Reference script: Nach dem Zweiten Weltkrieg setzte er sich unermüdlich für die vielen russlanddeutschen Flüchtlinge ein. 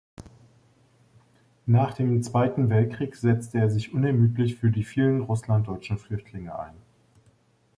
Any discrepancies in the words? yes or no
no